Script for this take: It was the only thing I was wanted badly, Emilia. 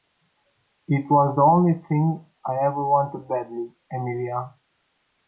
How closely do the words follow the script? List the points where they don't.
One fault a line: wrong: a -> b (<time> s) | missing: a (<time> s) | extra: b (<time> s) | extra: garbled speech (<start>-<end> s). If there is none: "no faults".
wrong: was -> ever (2.7 s)